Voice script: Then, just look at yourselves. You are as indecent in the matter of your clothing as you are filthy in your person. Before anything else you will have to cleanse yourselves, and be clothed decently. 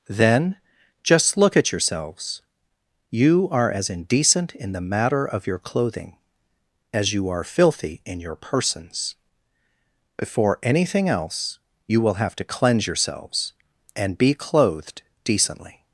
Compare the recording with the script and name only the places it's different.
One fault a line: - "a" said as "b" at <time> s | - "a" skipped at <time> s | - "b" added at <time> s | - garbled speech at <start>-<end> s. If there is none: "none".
- "person" said as "persons" at 8.4 s